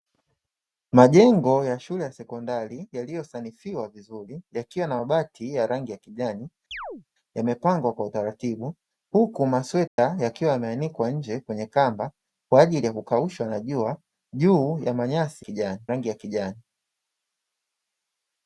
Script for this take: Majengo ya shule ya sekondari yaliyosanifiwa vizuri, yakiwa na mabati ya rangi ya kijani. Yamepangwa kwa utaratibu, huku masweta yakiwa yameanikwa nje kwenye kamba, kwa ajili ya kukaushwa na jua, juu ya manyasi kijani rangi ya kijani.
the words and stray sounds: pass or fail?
fail